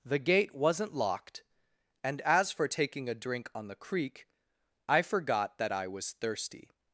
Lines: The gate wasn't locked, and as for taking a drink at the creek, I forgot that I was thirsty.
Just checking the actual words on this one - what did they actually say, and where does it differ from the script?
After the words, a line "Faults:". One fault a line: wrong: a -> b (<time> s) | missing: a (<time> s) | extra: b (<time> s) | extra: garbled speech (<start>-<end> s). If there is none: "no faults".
The gate wasn't locked, and as for taking a drink on the creek, I forgot that I was thirsty.
Faults:
wrong: at -> on (3.5 s)